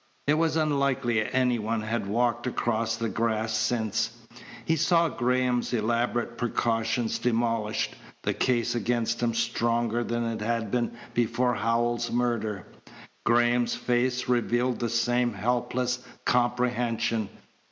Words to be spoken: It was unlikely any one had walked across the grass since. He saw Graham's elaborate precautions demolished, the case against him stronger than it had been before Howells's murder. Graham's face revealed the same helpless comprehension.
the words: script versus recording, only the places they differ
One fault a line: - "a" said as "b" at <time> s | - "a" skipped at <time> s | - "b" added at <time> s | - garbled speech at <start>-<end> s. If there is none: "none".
none